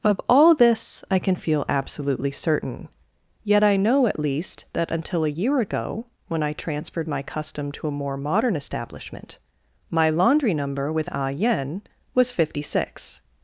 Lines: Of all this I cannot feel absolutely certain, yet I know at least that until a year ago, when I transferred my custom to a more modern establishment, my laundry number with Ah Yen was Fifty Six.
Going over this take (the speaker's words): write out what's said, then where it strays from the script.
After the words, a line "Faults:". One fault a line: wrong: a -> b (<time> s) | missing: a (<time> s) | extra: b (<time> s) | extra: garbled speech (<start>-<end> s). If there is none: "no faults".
Of all this I can feel absolutely certain, yet I know at least that until a year ago, when I transferred my custom to a more modern establishment, my laundry number with Ah Yen was Fifty Six.
Faults:
wrong: cannot -> can (1.2 s)